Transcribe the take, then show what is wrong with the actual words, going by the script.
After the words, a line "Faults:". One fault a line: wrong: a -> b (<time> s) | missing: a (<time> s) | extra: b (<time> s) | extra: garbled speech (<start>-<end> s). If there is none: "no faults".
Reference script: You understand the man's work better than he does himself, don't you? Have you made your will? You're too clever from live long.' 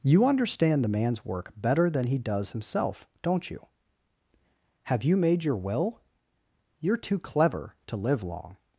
You understand the man's work better than he does himself, don't you? Have you made your will? You're too clever to live long.'
Faults:
wrong: from -> to (7.9 s)